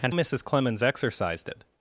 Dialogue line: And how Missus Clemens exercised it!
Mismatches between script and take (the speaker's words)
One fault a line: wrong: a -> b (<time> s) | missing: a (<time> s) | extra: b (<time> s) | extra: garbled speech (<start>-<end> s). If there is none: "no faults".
missing: how (0.1 s)